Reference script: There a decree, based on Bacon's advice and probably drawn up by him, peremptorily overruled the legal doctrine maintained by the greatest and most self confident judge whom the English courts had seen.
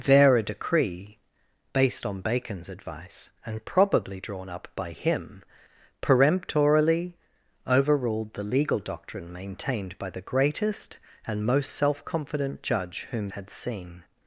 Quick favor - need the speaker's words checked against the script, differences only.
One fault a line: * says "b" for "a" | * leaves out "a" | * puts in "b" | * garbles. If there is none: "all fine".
* leaves out "the English courts"